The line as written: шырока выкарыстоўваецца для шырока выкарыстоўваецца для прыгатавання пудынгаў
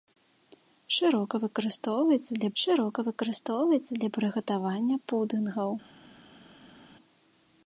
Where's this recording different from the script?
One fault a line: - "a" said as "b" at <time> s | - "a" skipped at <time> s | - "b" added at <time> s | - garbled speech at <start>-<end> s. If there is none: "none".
none